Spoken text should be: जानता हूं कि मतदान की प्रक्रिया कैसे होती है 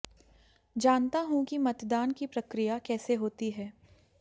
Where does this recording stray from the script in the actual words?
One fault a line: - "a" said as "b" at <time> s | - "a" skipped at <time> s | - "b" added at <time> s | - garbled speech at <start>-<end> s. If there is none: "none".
none